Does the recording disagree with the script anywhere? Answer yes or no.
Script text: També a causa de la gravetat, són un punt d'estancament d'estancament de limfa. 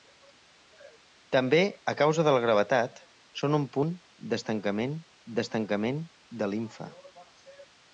no